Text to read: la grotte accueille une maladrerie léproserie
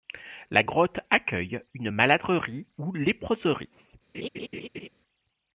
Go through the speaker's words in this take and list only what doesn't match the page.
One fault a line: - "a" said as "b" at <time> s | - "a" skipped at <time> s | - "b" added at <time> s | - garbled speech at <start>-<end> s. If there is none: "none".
- "ou" added at 2.8 s